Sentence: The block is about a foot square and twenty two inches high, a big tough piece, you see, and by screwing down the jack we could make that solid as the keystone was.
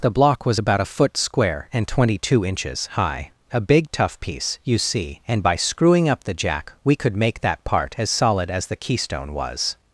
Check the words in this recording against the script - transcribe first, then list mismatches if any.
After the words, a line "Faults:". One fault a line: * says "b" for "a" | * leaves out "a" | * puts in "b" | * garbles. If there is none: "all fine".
The block was about a foot square and twenty two inches high, a big tough piece, you see, and by screwing up the jack we could make that part as solid as the keystone was.
Faults:
* says "was" for "is"
* says "up" for "down"
* puts in "part as"